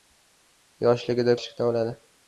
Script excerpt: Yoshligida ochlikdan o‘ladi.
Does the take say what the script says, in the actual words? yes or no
yes